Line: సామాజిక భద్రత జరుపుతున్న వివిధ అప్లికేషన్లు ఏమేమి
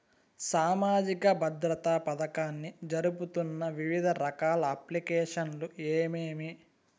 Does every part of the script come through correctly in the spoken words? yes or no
no